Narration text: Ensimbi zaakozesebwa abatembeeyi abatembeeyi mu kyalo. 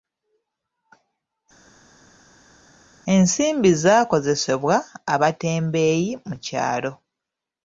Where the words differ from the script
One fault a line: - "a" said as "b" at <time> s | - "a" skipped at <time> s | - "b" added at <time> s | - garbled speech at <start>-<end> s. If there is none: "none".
- "abatembeeyi" skipped at 6.1 s